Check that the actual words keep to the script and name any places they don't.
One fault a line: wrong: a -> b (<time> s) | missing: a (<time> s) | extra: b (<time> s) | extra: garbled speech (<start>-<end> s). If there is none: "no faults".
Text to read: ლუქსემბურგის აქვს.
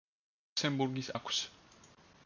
no faults